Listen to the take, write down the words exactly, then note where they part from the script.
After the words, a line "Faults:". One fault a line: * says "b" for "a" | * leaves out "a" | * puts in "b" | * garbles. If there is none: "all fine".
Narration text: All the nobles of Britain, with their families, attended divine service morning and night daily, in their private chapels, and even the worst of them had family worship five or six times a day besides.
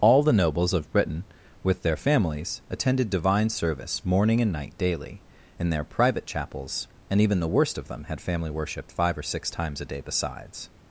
All the nobles of Britain, with their families, attended divine service morning and night daily, in their private chapels, and even the worst of them had family worship five or six times a day besides.
Faults:
all fine